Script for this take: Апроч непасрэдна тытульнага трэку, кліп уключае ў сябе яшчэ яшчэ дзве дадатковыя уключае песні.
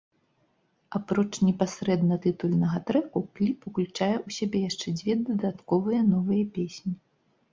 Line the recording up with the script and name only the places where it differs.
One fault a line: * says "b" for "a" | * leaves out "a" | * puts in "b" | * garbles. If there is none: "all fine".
* leaves out "яшчэ"
* says "новыя" for "уключае"